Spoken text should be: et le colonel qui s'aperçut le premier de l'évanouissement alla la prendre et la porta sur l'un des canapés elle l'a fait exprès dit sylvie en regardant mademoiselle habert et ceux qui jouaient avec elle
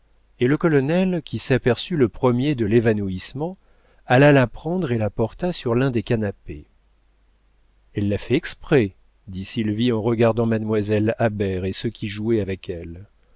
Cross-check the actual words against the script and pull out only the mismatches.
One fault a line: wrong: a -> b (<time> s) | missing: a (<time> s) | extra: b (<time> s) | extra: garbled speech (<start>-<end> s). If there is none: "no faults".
no faults